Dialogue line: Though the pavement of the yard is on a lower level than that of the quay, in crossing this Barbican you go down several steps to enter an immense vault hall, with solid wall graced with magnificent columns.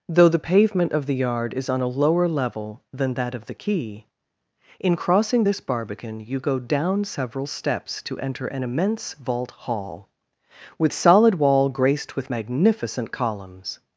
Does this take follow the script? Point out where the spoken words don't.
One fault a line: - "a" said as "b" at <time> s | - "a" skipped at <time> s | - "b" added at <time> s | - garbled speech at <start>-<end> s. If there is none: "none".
none